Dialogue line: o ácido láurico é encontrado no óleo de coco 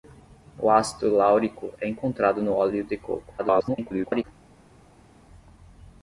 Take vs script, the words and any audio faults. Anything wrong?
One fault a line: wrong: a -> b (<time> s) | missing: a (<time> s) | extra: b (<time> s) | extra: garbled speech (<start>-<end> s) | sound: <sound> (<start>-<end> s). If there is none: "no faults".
extra: garbled speech (3.4-4.2 s)